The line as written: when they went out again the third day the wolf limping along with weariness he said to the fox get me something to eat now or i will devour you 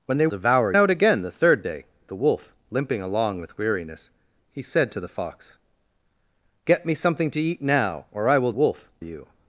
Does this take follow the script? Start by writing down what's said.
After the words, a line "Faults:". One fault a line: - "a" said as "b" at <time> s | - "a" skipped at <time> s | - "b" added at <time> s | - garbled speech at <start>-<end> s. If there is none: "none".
when they devour out again the third day the wolf limping along with weariness he said to the fox get me something to eat now or i will wolf you
Faults:
- "went" said as "devour" at 0.3 s
- "devour" said as "wolf" at 8.5 s